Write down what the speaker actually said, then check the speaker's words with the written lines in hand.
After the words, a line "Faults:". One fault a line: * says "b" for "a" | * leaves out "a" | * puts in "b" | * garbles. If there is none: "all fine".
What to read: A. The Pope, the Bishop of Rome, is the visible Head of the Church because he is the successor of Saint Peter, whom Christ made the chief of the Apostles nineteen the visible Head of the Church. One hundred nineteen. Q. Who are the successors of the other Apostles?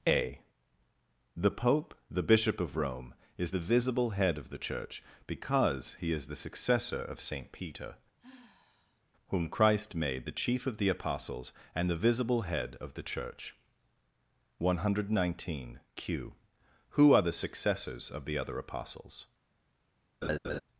A. The Pope, the Bishop of Rome, is the visible Head of the Church because he is the successor of Saint Peter, whom Christ made the chief of the Apostles and the visible Head of the Church. One hundred nineteen. Q. Who are the successors of the other Apostles?
Faults:
* says "and" for "nineteen"